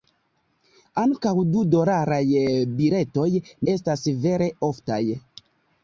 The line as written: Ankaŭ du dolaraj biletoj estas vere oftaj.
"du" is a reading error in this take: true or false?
false